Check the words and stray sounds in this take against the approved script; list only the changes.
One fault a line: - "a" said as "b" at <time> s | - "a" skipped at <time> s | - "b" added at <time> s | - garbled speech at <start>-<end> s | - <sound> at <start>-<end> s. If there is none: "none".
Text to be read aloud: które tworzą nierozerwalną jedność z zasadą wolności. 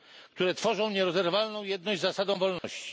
- dropout at 2.6-2.6 s